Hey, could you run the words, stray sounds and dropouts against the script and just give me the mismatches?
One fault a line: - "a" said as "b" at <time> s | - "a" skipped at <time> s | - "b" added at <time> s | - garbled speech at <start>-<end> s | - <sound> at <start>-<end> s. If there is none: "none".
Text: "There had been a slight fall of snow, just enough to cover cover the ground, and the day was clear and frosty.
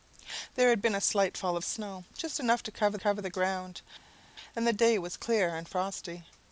none